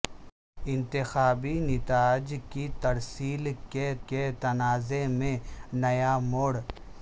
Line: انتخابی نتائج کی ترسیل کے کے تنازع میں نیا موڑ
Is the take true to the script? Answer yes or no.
yes